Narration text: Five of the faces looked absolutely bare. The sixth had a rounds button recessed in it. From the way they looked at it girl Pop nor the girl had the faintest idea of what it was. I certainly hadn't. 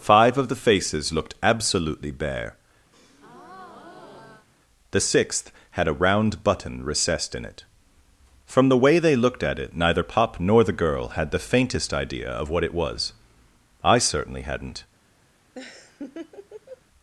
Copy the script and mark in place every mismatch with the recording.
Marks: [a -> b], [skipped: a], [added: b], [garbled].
Five of the faces looked absolutely bare. The sixth had a [rounds -> round] button recessed in it. From the way they looked at it [girl -> neither] Pop nor the girl had the faintest idea of what it was. I certainly hadn't.